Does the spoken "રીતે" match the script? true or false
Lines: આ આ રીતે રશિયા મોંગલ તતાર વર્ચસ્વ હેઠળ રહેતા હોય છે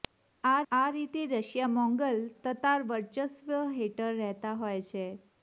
true